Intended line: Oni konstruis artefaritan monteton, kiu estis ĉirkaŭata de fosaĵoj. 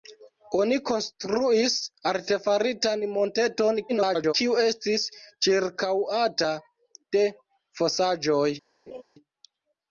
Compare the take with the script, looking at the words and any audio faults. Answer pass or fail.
fail